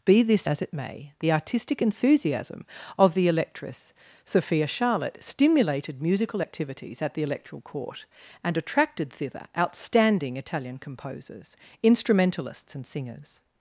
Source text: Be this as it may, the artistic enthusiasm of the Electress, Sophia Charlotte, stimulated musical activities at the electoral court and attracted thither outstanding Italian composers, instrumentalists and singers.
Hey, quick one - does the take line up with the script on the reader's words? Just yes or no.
yes